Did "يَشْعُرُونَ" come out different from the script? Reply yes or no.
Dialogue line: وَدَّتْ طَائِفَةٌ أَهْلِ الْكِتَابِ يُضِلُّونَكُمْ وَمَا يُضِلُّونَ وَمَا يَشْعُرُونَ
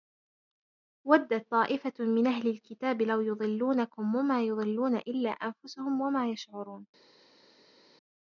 no